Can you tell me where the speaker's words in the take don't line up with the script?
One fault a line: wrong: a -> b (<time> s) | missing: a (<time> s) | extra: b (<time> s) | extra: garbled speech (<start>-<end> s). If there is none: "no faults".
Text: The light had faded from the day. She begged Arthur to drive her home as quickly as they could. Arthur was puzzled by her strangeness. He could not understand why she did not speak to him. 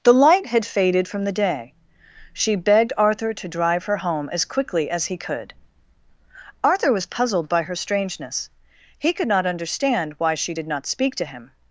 wrong: they -> he (5.0 s)